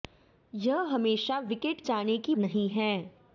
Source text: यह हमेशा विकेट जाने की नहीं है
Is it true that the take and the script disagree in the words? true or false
false